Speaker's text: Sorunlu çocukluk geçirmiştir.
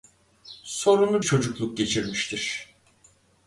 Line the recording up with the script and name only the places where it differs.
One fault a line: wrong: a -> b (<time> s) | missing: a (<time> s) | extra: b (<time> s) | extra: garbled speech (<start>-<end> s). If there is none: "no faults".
no faults